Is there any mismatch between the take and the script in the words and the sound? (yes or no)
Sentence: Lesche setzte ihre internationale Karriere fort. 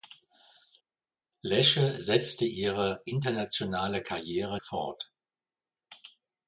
no